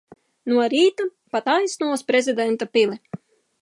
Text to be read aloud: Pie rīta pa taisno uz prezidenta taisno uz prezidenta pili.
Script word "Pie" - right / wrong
wrong